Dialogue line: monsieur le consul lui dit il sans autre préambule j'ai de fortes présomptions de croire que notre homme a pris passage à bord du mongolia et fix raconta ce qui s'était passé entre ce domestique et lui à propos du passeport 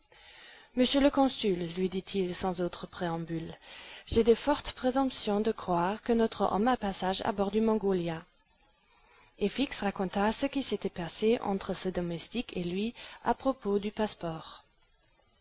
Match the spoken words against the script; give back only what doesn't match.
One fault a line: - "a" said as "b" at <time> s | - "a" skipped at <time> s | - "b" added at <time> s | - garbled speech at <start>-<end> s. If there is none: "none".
- "pris" skipped at 6.8 s